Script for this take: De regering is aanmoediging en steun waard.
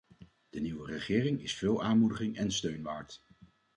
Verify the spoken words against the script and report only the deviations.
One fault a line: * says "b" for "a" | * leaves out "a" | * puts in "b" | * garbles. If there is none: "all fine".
* puts in "nieuwe"
* puts in "veel"